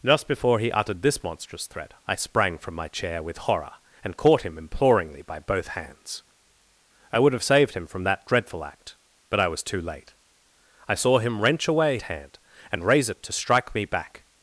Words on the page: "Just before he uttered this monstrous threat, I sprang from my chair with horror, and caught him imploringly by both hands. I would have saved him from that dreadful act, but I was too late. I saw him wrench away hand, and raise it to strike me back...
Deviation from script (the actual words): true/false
false